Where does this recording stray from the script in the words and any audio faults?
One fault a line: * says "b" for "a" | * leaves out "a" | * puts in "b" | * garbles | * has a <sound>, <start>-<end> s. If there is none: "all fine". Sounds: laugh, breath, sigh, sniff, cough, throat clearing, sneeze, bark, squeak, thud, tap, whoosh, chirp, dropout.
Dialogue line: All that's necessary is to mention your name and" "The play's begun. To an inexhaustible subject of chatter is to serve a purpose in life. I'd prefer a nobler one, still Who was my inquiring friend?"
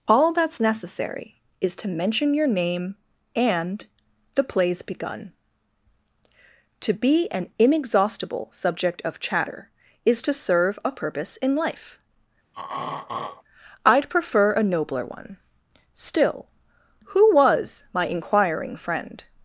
* puts in "be"
* has a throat clearing, 12.5-13.4 s